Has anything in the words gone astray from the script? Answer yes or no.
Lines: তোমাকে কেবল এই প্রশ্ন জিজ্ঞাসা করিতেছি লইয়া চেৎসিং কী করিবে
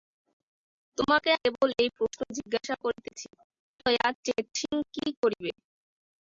no